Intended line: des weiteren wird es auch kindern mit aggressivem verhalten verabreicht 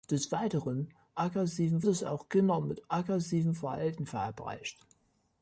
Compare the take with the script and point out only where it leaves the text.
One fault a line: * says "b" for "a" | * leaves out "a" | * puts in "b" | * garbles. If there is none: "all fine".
* says "aggressivem" for "wird"